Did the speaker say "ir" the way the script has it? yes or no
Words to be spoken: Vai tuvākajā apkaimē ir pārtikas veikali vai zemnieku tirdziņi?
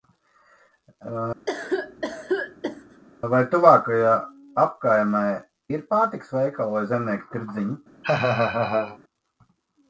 yes